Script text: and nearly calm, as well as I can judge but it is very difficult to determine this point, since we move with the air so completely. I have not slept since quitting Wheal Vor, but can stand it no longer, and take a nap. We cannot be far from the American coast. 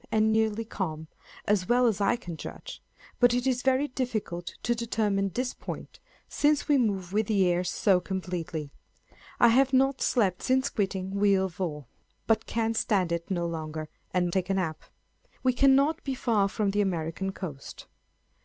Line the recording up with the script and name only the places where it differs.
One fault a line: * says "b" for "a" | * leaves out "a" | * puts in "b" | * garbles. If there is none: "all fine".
all fine